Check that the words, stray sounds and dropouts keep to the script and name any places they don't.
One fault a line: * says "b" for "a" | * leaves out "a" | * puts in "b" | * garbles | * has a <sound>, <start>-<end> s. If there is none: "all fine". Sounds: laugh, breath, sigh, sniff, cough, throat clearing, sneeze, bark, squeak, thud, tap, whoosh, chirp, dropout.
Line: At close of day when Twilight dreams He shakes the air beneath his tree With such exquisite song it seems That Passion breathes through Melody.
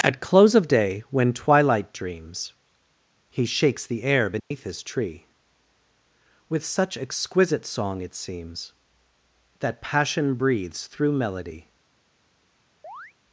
* has a dropout, 4.4-4.5 s
* has a chirp, 12.8-13.1 s